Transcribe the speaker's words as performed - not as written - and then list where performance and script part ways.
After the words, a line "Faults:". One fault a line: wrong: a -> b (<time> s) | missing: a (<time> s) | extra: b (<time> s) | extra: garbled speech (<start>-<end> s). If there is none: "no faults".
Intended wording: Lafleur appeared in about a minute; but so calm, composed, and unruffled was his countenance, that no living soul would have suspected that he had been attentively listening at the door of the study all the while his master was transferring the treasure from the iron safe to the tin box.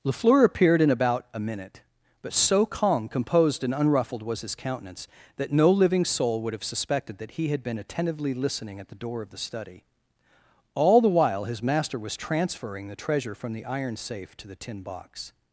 Lafleur appeared in about a minute; but so calm, composed, and unruffled was his countenance, that no living soul would have suspected that he had been attentively listening at the door of the study all the while his master was transferring the treasure from the iron safe to the tin box.
Faults:
no faults